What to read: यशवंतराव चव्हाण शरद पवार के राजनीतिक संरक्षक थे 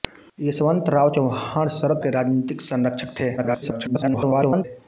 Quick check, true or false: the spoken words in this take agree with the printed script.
false